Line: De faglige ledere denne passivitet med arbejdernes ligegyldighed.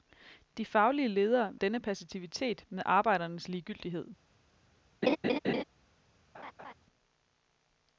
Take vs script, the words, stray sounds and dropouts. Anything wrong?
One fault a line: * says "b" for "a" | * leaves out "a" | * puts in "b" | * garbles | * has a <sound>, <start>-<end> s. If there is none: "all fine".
* has a laugh, 5.0-5.6 s
* has a laugh, 6.3-6.7 s